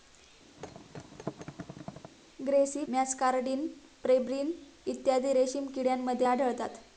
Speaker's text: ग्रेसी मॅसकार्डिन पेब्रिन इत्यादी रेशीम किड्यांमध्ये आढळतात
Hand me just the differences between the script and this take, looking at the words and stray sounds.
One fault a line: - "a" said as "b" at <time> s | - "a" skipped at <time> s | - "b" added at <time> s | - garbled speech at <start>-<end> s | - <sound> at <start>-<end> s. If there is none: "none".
- thud at 0.6-2.1 s